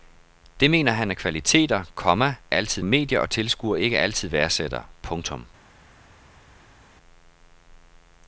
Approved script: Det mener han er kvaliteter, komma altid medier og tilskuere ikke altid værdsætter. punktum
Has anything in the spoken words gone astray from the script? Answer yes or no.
no